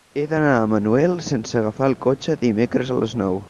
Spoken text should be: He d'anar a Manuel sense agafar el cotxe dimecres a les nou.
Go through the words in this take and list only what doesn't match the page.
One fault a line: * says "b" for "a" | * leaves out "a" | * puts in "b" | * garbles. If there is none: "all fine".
all fine